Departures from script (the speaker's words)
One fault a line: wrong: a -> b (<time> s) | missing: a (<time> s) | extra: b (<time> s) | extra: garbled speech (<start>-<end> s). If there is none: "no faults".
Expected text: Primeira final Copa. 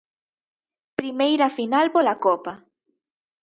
extra: pola (1.9 s)